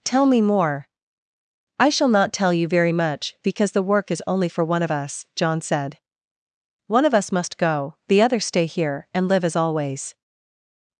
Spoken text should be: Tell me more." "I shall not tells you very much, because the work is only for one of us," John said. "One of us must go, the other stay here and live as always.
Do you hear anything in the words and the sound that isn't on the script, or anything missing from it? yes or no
yes